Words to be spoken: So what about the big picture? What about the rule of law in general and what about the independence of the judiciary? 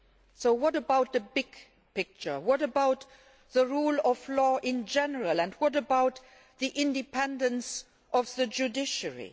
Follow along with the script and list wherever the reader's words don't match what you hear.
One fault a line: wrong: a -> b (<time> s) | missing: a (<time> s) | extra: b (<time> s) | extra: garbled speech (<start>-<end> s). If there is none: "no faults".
no faults